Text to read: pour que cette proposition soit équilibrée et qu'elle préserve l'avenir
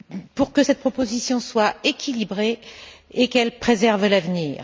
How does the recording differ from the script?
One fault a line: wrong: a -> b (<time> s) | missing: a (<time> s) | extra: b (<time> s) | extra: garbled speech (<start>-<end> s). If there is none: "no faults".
no faults